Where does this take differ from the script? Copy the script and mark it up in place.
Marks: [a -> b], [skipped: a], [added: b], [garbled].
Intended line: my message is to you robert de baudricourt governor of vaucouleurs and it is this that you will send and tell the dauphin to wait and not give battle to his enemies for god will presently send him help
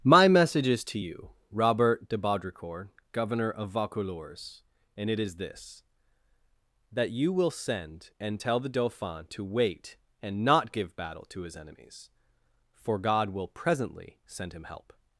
my message is to you robert de baudricourt governor of vaucouleurs and it is this that you will send and tell the dauphin to wait and not give battle to his enemies for god will presently send him help